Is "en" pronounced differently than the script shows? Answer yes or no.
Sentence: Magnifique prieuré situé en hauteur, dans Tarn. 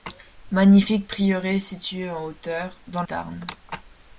no